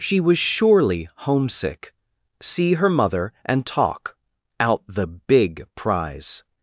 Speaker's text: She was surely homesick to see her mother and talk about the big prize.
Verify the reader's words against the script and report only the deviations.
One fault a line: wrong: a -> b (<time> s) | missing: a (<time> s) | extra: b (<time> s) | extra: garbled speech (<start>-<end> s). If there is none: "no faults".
missing: to (1.9 s)
wrong: about -> out (4.6 s)